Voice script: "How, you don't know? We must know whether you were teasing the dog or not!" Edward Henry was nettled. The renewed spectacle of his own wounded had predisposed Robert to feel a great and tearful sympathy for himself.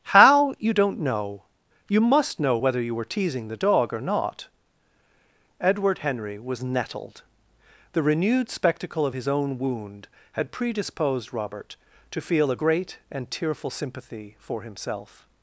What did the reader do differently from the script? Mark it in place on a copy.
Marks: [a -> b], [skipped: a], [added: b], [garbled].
"How, you don't know? [We -> You] must know whether you were teasing the dog or not!" Edward Henry was nettled. The renewed spectacle of his own [wounded -> wound] had predisposed Robert to feel a great and tearful sympathy for himself.